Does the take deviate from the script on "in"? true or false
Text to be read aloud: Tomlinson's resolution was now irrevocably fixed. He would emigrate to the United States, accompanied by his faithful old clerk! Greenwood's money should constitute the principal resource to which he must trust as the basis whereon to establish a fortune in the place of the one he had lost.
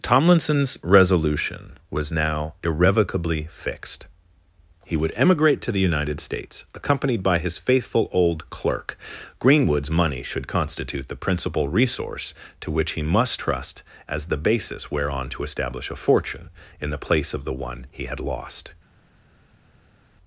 false